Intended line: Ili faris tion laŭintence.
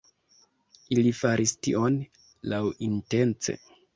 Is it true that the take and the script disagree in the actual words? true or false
false